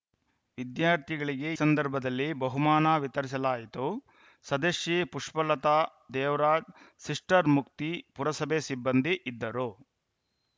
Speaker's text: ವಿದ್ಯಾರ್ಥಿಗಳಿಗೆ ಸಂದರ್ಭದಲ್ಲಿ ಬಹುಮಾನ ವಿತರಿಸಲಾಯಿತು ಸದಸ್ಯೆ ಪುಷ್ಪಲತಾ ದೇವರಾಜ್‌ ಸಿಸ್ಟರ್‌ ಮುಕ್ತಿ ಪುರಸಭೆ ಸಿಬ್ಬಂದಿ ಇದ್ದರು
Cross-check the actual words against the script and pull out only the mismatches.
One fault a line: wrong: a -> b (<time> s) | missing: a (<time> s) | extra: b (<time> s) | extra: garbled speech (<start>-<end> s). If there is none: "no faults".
no faults